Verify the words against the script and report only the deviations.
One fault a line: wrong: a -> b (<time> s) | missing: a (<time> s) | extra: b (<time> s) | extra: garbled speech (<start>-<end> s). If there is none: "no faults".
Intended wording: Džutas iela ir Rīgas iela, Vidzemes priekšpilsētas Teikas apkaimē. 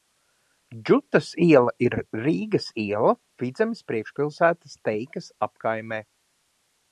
no faults